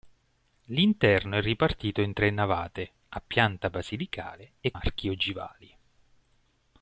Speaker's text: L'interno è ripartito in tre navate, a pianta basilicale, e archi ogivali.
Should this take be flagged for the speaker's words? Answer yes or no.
no